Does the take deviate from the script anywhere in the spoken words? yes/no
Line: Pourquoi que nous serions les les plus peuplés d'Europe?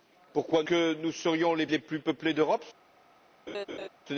no